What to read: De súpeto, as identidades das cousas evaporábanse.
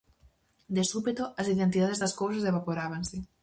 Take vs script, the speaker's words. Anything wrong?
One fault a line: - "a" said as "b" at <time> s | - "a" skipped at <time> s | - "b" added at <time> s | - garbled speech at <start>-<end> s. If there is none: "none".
none